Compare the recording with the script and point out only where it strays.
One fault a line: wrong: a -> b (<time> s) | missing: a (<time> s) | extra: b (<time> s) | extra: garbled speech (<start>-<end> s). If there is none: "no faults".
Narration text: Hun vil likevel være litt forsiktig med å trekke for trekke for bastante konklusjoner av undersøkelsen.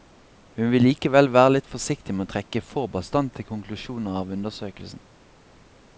missing: trekke for (2.9 s)